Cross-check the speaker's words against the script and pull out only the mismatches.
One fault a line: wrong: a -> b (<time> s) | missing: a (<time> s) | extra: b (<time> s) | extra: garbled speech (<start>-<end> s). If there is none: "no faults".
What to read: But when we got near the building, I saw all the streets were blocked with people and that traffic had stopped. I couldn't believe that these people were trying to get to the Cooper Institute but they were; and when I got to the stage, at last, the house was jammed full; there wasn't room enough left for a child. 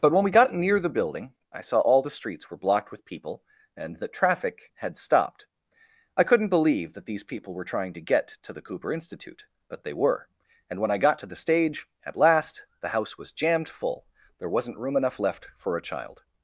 no faults